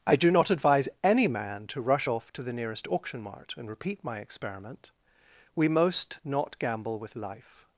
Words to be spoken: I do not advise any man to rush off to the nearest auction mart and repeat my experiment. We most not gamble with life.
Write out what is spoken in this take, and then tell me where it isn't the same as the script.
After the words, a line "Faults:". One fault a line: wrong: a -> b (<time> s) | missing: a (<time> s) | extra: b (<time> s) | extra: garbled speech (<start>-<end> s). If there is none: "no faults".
I do not advise any man to rush off to the nearest auction mart and repeat my experiment. We most not gamble with life.
Faults:
no faults